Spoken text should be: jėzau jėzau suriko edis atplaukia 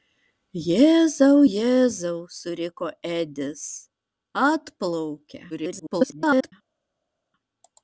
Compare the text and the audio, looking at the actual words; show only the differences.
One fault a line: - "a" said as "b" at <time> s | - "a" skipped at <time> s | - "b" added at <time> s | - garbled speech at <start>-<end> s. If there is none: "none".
- garbled speech at 5.5-6.5 s